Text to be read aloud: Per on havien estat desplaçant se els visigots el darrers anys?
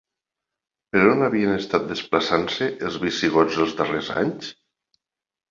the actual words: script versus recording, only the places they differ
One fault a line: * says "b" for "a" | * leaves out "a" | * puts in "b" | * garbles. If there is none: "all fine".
* says "els" for "el"